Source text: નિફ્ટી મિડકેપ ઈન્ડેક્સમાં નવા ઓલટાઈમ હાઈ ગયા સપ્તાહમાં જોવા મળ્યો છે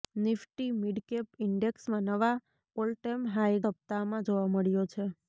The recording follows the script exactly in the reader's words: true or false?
false